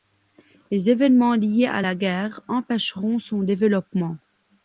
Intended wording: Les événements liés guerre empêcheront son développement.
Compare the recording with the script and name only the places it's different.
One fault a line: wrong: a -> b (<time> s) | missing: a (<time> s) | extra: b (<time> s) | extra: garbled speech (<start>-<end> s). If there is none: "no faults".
extra: à la (1.7 s)